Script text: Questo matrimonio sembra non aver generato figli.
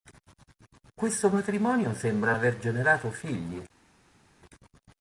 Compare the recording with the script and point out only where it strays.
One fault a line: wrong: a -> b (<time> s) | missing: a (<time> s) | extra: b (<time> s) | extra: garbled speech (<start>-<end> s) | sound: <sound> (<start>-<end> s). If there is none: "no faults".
missing: non (2.3 s)